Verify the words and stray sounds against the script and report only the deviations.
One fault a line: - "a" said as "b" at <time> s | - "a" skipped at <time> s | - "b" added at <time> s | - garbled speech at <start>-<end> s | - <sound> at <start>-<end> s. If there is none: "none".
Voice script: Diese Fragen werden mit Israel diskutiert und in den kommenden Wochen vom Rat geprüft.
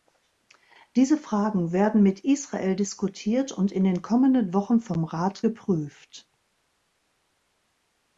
none